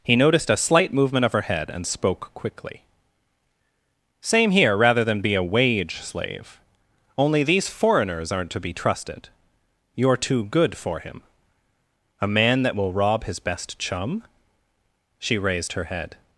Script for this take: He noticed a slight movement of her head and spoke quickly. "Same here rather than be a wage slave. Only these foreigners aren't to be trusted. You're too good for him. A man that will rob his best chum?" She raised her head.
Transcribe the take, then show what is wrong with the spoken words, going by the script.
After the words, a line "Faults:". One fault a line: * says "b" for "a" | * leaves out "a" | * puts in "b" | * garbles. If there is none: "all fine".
He noticed a slight movement of her head and spoke quickly. "Same here rather than be a wage slave. Only these foreigners aren't to be trusted. You're too good for him. A man that will rob his best chum?" She raised her head.
Faults:
all fine